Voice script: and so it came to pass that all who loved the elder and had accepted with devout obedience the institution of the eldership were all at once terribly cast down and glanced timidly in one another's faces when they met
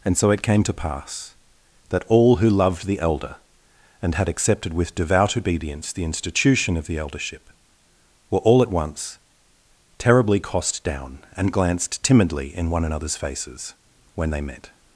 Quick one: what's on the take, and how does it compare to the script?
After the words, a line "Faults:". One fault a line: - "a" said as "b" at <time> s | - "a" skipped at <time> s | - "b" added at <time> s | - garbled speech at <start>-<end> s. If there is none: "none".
and so it came to pass that all who loved the elder and had accepted with devout obedience the institution of the eldership were all at once terribly cost down and glanced timidly in one another's faces when they met
Faults:
- "cast" said as "cost" at 10.4 s